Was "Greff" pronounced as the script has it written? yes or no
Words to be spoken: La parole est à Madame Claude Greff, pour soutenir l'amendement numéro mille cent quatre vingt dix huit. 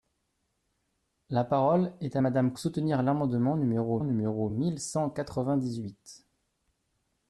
no